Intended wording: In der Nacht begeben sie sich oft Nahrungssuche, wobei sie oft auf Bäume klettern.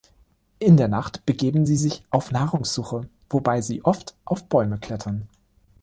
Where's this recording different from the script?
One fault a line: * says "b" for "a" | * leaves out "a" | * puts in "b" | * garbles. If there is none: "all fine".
* says "auf" for "oft"